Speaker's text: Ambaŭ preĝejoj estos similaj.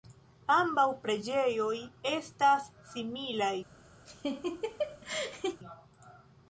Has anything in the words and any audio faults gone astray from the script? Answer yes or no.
yes